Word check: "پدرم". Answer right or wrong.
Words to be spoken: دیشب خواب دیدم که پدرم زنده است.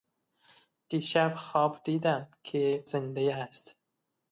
wrong